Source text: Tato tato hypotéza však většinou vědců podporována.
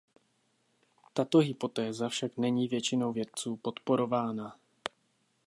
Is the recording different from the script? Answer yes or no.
yes